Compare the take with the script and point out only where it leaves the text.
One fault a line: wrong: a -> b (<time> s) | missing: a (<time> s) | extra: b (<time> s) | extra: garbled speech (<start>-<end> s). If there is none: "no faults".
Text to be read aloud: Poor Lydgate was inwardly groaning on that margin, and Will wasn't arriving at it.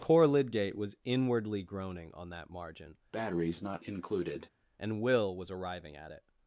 wrong: wasn't -> was (5.4 s)